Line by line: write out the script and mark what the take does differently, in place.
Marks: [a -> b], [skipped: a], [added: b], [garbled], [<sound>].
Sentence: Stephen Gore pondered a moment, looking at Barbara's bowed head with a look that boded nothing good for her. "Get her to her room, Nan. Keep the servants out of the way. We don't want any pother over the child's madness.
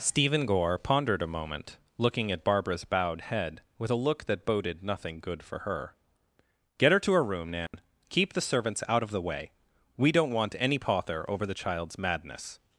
Stephen Gore pondered a moment, looking at Barbara's bowed head with a look that boded nothing good for her. "Get her to her room, Nan. [dropout] Keep the servants out of the way. We don't want any pother over the child's madness.